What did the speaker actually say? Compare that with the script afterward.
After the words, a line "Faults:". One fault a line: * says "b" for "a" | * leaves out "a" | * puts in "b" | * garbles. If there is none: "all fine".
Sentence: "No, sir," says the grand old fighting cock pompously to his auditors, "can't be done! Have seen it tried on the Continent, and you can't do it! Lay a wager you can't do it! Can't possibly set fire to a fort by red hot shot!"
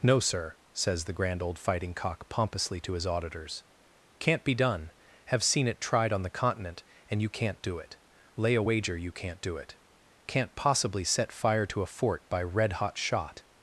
"No, sir," says the grand old fighting cock pompously to his auditors, "can't be done! Have seen it tried on the Continent, and you can't do it! Lay a wager you can't do it! Can't possibly set fire to a fort by red hot shot!"
Faults:
all fine